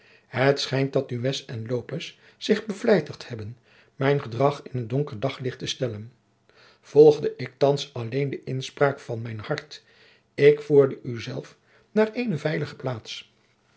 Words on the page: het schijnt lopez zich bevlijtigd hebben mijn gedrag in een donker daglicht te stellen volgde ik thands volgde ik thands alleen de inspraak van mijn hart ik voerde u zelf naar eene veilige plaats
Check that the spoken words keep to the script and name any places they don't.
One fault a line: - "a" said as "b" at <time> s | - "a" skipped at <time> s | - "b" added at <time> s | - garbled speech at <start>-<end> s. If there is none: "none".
- "dat nunez en" added at 0.9 s
- "volgde ik thands" skipped at 7.9 s